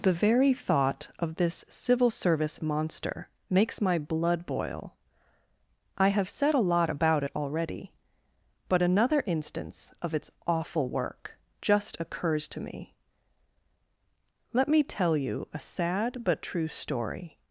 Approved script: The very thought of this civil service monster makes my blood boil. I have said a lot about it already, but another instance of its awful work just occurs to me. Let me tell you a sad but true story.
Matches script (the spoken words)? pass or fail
pass